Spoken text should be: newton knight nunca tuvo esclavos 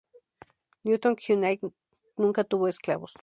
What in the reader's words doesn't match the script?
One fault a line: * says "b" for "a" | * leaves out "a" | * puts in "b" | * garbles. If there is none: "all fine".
all fine